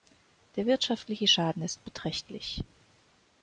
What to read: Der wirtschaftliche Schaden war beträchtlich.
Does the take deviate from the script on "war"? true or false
true